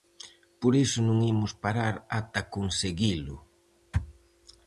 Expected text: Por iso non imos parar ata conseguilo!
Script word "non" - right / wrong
right